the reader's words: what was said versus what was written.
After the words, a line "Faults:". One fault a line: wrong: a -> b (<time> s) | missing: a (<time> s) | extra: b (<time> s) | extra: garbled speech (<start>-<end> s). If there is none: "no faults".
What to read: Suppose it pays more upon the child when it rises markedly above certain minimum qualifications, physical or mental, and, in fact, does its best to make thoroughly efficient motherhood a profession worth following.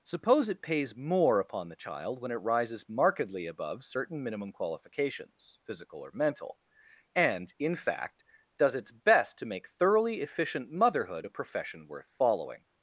Suppose it pays more upon the child when it rises markedly above certain minimum qualifications, physical or mental, and, in fact, does its best to make thoroughly efficient motherhood a profession worth following.
Faults:
no faults